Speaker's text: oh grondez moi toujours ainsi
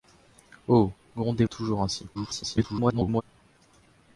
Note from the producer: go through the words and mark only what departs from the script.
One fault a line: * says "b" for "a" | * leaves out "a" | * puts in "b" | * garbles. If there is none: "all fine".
* leaves out "moi"
* garbles